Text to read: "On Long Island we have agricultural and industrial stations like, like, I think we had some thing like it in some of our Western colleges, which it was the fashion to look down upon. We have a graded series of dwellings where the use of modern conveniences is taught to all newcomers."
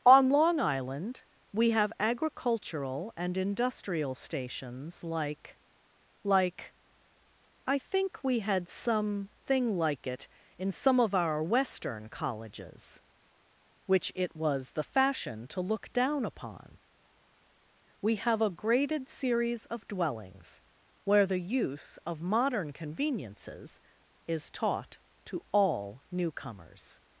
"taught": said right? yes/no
yes